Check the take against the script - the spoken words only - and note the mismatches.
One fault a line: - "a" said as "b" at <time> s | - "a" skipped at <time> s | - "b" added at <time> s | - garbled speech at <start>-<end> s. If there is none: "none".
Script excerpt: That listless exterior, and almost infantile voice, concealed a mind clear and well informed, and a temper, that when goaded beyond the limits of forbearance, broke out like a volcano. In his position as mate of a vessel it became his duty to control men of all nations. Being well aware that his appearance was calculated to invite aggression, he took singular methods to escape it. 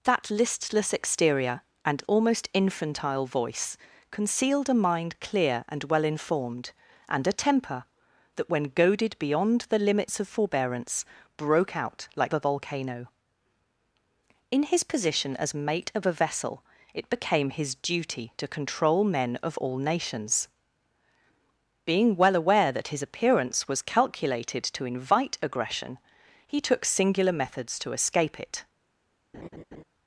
none